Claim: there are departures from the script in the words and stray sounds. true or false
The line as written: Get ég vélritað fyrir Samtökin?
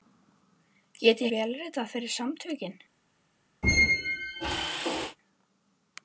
true